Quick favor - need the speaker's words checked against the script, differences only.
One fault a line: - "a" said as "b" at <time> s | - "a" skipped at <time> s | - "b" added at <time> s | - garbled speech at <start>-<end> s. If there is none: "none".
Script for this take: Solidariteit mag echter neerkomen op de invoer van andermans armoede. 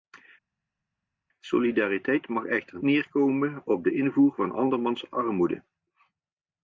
none